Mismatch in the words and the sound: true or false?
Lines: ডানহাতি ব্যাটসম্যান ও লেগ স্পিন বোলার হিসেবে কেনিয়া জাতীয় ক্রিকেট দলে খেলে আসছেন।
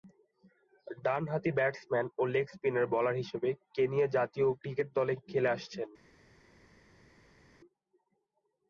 false